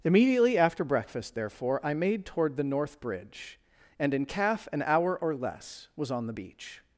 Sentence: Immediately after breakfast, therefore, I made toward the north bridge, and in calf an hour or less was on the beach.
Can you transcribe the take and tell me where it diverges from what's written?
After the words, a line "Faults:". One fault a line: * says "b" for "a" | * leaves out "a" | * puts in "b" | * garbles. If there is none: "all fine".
Immediately after breakfast, therefore, I made toward the north bridge, and in calf an hour or less was on the beach.
Faults:
all fine